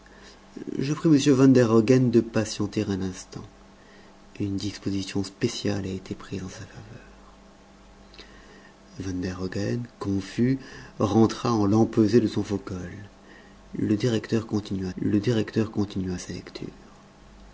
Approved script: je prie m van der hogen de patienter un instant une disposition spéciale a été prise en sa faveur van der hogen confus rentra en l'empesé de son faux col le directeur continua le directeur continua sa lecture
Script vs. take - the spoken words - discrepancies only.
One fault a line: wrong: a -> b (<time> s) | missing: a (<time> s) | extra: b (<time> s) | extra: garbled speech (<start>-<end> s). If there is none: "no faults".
no faults